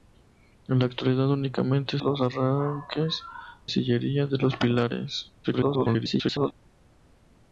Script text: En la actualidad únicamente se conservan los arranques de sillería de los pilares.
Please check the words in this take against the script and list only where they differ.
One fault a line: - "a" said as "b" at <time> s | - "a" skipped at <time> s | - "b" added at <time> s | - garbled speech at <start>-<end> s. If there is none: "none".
- "se conservan" skipped at 2.0 s
- "de" skipped at 3.2 s
- garbled speech at 5.4-6.5 s